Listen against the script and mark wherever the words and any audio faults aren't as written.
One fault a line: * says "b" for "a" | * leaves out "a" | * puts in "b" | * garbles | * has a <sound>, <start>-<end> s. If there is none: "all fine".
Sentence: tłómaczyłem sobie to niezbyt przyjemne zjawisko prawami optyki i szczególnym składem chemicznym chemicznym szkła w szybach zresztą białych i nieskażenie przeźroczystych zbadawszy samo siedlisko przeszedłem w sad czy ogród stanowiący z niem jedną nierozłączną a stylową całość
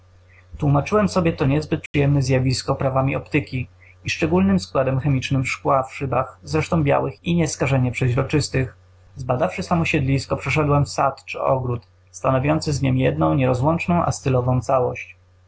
* has a dropout, 1.9-1.9 s
* leaves out "chemicznym"